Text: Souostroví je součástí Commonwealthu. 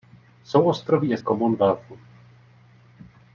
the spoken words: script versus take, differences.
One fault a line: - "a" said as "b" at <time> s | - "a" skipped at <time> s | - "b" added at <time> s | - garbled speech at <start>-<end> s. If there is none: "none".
- "součástí" skipped at 1.2 s